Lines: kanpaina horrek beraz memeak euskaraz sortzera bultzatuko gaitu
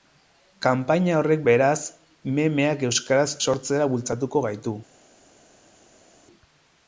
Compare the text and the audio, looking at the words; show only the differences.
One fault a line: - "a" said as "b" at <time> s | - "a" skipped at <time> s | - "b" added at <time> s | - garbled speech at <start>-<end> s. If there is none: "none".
none